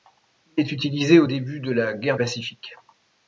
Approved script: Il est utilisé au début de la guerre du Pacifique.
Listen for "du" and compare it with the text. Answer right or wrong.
wrong